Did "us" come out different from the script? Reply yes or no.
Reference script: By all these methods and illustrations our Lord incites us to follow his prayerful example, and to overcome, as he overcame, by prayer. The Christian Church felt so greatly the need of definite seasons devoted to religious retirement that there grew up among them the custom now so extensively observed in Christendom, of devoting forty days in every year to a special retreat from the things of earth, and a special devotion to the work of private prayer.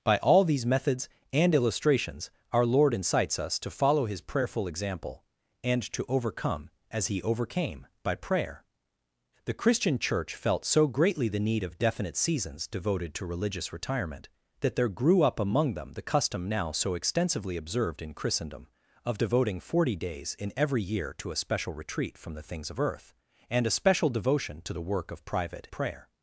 no